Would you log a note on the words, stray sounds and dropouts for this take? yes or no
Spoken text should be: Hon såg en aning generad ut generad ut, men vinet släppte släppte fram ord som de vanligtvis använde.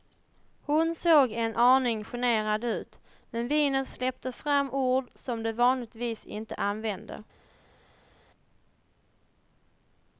yes